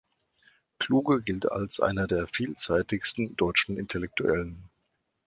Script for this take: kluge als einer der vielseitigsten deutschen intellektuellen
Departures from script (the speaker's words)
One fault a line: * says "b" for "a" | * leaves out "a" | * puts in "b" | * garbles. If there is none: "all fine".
* puts in "gilt"